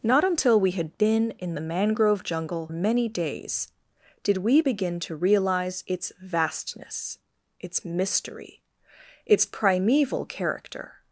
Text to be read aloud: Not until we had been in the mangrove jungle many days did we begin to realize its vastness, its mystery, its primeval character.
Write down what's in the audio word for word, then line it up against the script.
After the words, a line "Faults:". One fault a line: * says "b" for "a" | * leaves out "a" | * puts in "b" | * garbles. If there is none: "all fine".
Not until we had been in the mangrove jungle many days did we begin to realize its vastness, its mystery, its primeval character.
Faults:
all fine